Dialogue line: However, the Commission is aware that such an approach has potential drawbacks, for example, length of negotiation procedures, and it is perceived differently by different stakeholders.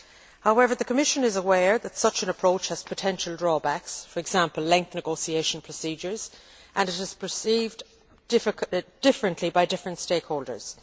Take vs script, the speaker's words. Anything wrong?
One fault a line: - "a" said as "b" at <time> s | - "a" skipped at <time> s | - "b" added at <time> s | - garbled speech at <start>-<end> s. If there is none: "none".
- "of" skipped at 4.9 s